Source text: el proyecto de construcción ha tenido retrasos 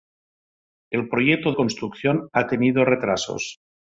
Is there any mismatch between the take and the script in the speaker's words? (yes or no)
yes